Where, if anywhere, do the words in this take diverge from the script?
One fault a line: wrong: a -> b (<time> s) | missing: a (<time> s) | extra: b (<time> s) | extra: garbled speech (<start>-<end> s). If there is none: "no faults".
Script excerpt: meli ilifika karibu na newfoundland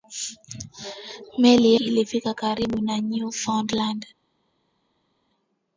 no faults